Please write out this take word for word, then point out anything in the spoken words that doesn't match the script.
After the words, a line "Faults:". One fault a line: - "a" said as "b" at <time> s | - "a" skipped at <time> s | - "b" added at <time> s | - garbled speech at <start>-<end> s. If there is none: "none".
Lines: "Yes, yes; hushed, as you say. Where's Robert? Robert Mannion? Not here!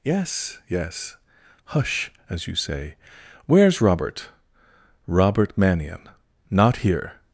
"Yes, yes; hush, as you say. Where's Robert? Robert Mannion? Not here!
Faults:
- "hushed" said as "hush" at 1.6 s